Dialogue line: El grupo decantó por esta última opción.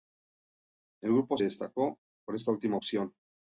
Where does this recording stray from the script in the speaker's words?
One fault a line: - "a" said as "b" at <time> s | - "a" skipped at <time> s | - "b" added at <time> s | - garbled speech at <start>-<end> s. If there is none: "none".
none